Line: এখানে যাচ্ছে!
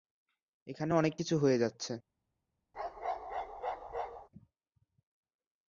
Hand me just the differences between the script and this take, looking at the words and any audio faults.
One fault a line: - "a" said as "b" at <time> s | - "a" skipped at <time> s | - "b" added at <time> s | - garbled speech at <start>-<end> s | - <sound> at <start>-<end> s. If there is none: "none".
- "অনেক কিছু হয়ে" added at 0.9 s
- bark at 2.7-4.3 s